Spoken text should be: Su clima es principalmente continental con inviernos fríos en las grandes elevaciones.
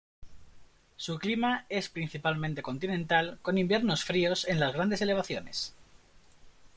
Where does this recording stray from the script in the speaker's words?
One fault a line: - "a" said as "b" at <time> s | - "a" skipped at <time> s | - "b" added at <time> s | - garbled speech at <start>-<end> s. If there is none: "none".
none